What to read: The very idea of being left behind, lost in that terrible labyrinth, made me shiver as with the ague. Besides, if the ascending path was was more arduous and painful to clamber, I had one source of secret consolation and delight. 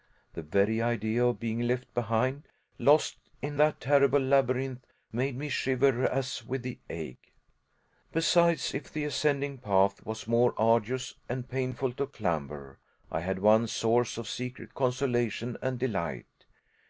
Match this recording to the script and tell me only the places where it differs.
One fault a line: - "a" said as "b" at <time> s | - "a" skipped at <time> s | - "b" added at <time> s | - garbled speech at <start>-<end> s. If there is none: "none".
- "was" skipped at 10.2 s